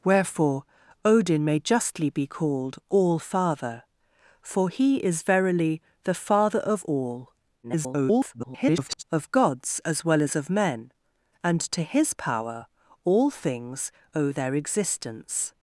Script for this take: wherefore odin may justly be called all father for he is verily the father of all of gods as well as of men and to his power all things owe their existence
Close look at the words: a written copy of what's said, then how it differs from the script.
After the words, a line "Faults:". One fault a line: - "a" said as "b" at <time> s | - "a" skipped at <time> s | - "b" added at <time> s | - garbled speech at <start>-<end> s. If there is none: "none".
wherefore odin may justly be called all father for he is verily the father of all [garbled] of gods as well as of men and to his power all things owe their existence
Faults:
- garbled speech at 7.6-9.0 s